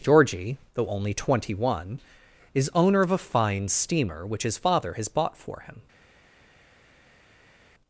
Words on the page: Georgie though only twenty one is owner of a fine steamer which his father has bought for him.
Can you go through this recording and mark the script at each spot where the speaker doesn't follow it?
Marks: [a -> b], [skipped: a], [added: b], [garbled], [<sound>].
Georgie though only twenty one is owner of a fine steamer which his father has bought for him.